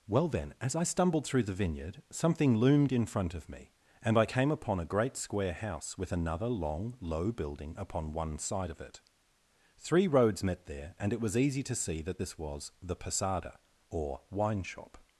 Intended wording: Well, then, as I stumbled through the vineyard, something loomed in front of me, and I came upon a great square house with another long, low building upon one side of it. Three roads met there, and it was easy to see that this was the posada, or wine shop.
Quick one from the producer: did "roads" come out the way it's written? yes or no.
yes